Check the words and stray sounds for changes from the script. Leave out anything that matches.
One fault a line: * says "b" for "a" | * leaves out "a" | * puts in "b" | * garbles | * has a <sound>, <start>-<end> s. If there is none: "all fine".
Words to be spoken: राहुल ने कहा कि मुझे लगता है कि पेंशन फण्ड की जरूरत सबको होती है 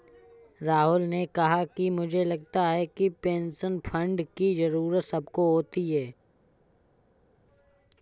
all fine